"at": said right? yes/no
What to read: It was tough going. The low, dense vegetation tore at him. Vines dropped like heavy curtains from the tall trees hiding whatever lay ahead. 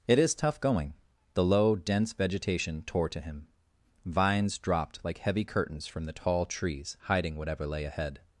no